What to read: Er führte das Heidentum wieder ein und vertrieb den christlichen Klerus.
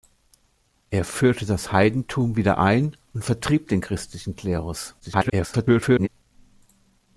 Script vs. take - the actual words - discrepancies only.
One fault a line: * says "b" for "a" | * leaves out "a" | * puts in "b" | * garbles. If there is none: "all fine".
* garbles